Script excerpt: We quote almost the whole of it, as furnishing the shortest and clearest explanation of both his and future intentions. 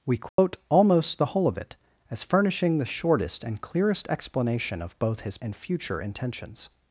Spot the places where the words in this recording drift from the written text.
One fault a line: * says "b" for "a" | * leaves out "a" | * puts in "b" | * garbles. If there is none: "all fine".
all fine